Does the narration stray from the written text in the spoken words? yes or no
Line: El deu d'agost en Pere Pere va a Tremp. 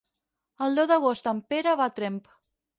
yes